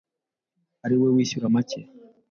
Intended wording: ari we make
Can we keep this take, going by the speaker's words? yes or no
no